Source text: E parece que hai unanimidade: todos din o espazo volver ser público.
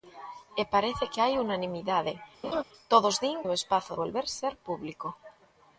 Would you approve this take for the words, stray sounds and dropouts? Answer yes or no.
no